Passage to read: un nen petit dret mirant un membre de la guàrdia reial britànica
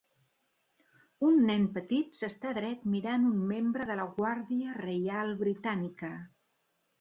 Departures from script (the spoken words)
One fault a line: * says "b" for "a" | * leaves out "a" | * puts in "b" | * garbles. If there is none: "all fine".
* puts in "s'està"